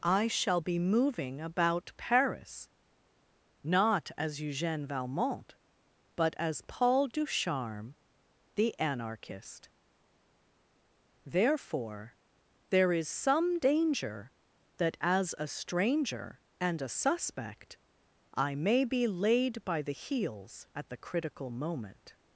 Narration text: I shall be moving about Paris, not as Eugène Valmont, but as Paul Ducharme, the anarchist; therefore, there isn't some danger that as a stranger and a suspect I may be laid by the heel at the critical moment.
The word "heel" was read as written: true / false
false